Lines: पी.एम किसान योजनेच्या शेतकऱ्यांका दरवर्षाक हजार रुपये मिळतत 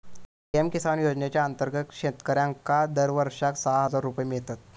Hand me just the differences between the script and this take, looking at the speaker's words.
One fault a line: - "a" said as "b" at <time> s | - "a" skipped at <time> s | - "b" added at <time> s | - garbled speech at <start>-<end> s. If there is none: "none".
- "अंतर्गत" added at 1.4 s
- "सहा" added at 3.6 s